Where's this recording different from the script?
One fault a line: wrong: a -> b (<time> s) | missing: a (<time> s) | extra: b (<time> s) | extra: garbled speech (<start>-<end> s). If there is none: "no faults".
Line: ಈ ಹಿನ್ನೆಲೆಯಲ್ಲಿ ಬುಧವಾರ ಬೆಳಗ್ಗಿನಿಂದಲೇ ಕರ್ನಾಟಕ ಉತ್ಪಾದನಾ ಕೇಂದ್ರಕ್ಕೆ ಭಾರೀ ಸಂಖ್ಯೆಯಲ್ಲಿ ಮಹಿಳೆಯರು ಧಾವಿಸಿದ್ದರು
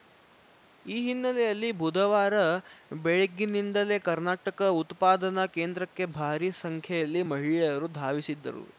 no faults